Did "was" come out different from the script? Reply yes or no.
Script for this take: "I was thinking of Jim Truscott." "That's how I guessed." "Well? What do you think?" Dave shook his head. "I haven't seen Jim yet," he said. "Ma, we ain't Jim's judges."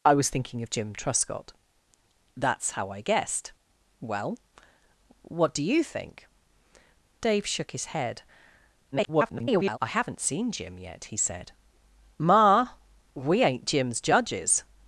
no